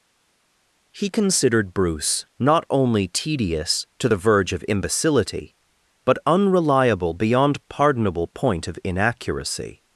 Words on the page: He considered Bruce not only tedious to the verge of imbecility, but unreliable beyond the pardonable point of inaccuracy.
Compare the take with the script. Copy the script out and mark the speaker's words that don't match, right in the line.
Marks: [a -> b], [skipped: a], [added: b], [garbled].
He considered Bruce not only tedious to the verge of imbecility, but unreliable beyond [skipped: the] pardonable point of inaccuracy.